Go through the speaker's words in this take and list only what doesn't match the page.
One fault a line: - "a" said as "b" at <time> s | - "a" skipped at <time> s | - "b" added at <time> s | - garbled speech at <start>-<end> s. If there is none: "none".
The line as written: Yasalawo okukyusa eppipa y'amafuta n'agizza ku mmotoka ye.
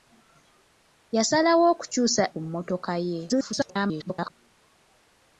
- "eppipa y'amafuta n'agizza" skipped at 2.2 s
- garbled speech at 3.3-4.3 s